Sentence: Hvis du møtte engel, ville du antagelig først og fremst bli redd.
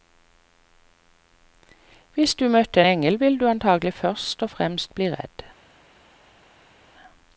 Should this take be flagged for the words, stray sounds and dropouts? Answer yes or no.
no